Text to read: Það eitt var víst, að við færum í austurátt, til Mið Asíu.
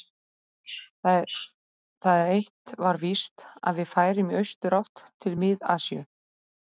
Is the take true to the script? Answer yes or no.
yes